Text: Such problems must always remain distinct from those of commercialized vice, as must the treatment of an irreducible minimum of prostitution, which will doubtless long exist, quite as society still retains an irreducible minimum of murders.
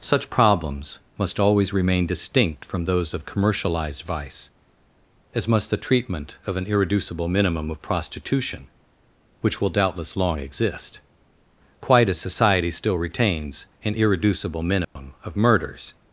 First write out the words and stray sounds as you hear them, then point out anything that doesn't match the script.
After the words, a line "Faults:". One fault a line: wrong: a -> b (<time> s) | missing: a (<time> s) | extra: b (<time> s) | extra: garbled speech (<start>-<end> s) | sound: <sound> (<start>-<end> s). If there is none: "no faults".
Such problems must always remain distinct from those of commercialized vice, as must the treatment of an irreducible minimum of prostitution, which will doubtless long exist, quite as society still retains an irreducible minimum of murders.
Faults:
sound: dropout (14.8-15.0 s)